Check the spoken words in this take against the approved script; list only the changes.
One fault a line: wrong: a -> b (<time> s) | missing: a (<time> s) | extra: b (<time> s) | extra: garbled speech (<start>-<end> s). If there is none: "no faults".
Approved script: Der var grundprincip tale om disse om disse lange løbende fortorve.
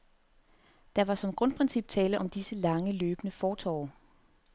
extra: som (1.1 s)
missing: om disse (2.5 s)